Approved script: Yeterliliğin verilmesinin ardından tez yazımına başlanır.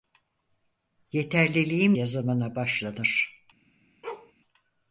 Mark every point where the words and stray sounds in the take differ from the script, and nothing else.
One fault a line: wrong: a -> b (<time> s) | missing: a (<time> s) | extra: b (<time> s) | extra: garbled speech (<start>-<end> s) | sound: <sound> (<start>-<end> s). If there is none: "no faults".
missing: verilmesinin ardından tez (2.0 s)
sound: bark (4.0-4.3 s)